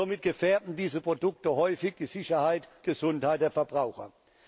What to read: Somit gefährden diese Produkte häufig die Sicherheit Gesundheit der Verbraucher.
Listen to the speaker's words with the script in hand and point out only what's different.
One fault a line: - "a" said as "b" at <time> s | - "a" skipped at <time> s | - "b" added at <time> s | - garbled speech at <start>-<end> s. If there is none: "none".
none